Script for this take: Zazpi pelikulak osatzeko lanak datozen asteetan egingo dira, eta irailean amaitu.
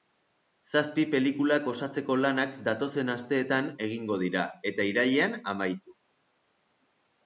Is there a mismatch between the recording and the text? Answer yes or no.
no